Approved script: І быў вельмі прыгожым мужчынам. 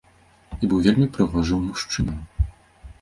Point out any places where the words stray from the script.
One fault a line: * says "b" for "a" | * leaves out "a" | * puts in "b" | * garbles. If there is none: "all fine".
all fine